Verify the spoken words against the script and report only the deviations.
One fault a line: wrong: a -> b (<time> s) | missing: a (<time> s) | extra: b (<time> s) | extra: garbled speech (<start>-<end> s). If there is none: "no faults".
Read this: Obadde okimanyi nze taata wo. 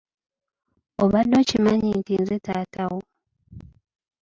extra: nti (2.0 s)